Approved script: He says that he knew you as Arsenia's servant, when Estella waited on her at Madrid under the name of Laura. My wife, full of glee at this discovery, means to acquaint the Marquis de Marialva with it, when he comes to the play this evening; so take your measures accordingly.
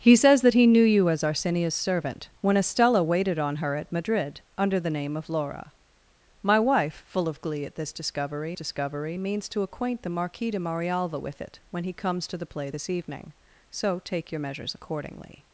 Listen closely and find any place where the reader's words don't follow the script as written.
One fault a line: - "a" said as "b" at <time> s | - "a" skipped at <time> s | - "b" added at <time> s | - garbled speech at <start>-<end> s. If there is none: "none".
- "discovery" added at 8.5 s